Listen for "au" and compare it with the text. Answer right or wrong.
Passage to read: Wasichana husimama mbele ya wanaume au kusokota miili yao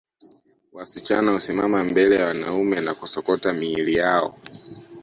wrong